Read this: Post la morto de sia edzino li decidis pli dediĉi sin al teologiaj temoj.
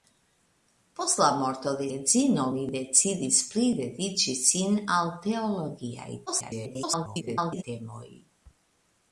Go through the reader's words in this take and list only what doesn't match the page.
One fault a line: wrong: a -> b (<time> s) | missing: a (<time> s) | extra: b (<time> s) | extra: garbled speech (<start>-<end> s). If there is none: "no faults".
missing: sia (1.9 s)
extra: garbled speech (6.3-7.6 s)